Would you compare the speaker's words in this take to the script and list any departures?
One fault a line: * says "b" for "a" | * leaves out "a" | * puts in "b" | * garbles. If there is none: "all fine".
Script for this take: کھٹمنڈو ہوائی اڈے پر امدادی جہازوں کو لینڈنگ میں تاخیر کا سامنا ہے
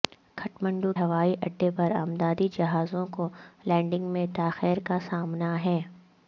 all fine